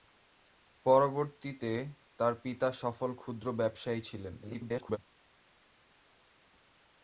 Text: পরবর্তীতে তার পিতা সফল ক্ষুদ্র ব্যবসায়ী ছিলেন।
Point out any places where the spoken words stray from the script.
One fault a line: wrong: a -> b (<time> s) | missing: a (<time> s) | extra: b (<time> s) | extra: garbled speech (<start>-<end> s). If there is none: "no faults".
extra: garbled speech (4.4-5.0 s)